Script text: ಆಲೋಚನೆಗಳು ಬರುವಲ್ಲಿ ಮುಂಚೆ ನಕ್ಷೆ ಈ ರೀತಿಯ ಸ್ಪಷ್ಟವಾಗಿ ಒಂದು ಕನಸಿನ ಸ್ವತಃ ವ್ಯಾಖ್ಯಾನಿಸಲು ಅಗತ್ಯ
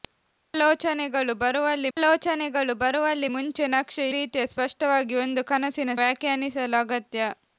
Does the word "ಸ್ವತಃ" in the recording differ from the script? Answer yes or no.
yes